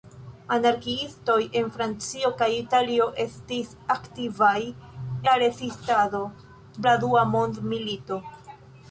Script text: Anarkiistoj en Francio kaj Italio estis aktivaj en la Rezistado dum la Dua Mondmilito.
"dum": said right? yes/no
no